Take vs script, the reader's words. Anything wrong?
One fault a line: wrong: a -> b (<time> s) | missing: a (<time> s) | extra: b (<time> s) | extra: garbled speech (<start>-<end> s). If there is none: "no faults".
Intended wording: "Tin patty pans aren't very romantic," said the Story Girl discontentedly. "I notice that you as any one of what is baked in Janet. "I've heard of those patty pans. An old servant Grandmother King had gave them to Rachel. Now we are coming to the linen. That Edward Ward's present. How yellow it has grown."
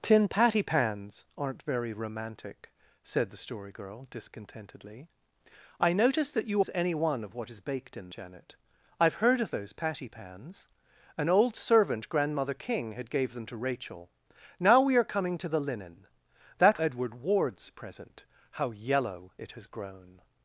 no faults